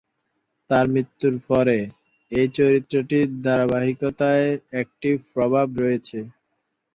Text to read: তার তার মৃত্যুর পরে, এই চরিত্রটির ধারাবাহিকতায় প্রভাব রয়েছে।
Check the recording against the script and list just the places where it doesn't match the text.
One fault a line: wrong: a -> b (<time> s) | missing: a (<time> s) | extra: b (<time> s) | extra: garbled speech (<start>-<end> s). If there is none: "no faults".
missing: তার (0.8 s)
extra: একটি (4.8 s)